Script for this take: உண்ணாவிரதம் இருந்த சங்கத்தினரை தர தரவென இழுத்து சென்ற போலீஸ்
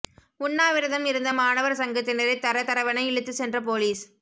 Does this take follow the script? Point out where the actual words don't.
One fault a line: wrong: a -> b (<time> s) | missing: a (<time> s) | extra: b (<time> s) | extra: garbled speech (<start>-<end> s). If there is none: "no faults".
extra: மாணவர் (1.3 s)